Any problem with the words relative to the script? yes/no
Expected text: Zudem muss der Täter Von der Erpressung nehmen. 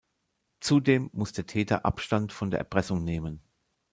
yes